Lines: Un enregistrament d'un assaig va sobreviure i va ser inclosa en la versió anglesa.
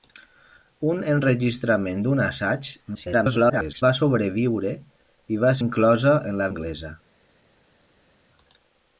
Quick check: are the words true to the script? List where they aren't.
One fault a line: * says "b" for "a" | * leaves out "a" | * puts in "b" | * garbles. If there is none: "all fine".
* garbles
* leaves out "ser"
* leaves out "versió"